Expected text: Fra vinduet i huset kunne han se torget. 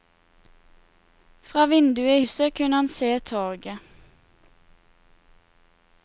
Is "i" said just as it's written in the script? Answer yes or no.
no